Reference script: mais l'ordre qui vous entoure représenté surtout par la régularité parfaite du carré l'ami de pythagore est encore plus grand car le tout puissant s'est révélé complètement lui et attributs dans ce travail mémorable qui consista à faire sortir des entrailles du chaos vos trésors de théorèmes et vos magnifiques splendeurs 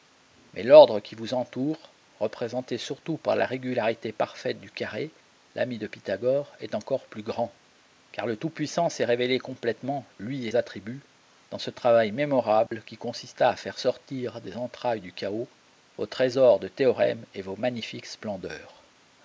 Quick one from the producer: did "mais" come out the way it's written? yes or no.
yes